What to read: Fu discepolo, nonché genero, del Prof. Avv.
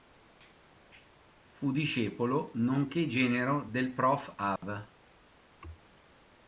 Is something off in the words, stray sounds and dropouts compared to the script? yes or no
yes